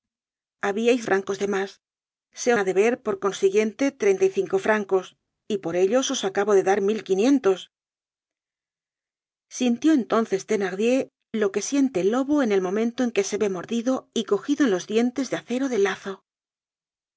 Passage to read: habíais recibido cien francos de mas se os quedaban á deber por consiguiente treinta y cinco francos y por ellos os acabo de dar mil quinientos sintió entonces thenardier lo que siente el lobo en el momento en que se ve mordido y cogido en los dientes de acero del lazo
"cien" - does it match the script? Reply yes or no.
no